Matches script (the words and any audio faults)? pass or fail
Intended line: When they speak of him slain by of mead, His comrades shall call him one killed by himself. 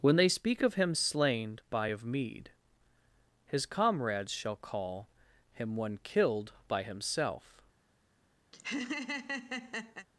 fail